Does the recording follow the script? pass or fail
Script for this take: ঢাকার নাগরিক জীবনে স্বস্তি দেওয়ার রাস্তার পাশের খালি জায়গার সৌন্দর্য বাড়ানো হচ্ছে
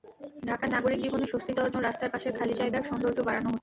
pass